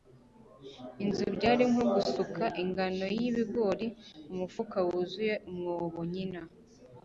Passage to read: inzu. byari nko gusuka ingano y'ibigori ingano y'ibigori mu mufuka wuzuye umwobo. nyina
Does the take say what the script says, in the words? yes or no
no